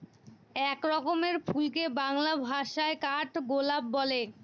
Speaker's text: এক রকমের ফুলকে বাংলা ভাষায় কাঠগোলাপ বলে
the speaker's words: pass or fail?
pass